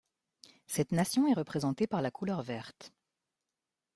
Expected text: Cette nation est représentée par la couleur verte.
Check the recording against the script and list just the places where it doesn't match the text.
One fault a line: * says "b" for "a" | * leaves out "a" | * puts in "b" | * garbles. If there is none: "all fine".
all fine